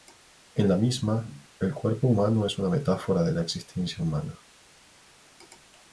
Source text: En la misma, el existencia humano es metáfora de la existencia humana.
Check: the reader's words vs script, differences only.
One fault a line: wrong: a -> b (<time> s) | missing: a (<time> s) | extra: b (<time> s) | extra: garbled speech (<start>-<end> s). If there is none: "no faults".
wrong: existencia -> cuerpo (1.7 s)
extra: una (2.6 s)